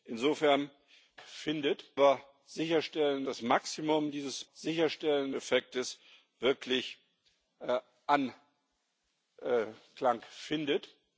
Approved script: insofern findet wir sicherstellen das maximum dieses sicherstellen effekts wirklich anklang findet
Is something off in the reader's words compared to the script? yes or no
no